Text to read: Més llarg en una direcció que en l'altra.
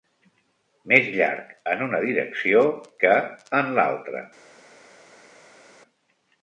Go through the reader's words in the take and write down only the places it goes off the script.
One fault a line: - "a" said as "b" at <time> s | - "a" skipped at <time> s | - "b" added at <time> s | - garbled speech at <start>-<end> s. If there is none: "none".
none